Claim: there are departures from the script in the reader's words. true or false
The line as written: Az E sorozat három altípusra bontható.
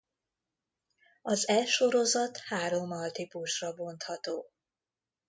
false